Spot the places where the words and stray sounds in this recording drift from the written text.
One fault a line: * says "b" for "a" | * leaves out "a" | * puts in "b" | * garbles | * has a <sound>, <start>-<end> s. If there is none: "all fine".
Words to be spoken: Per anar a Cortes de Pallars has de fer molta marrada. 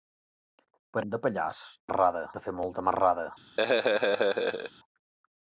* leaves out "anar a Cortes"
* says "marrada" for "has"
* has a laugh, 3.6-4.7 s